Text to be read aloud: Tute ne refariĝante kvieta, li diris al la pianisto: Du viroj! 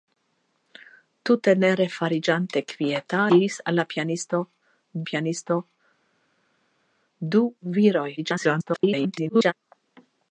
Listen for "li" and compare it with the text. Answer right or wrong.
wrong